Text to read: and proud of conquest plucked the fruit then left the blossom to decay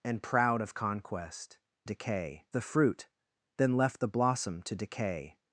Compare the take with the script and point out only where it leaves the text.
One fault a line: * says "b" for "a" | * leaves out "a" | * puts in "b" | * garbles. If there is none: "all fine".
* says "decay" for "plucked"